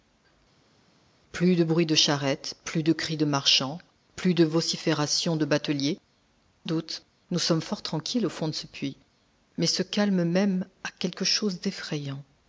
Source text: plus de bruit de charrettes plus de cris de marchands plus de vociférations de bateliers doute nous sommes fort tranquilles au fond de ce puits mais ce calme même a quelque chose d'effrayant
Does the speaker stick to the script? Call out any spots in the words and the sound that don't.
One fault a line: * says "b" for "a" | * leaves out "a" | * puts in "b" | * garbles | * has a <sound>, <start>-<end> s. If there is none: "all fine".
all fine